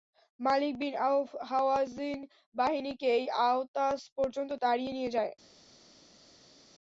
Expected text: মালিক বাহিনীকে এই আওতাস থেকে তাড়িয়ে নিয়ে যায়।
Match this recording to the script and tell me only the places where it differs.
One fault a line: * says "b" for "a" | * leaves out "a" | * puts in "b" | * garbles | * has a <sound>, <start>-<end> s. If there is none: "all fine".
* puts in "বিন আওফ হাওয়াযিন"
* says "পর্যন্ত" for "থেকে"